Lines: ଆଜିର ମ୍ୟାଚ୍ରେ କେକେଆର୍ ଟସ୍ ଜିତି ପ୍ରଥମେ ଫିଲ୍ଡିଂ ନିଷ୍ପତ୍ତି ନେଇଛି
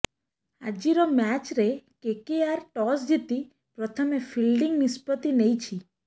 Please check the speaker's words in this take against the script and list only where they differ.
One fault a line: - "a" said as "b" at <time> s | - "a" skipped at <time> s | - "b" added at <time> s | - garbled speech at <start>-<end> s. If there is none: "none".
none